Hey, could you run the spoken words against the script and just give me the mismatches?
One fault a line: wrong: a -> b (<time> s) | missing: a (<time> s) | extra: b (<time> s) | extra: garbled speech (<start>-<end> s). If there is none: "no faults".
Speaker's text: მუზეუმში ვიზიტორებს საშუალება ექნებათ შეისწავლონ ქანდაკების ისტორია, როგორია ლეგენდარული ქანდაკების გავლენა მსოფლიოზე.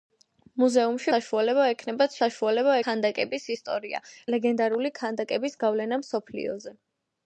missing: ვიზიტორებს (1.1 s)
wrong: შეისწავლონ -> საშუალება (2.2 s)
missing: როგორია (4.0 s)